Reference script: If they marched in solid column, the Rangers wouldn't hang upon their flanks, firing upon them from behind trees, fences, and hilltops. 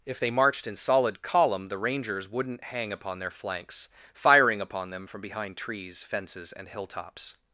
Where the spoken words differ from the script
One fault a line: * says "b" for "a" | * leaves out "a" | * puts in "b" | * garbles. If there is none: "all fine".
all fine